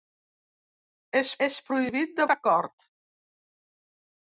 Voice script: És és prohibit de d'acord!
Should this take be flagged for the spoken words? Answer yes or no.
no